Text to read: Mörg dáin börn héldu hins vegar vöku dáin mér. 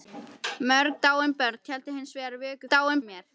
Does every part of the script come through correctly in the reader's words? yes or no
yes